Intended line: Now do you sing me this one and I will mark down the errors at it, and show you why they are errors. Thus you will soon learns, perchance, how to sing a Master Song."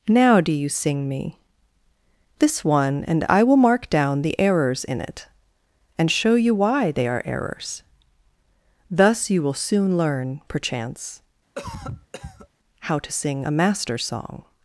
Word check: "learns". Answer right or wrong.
wrong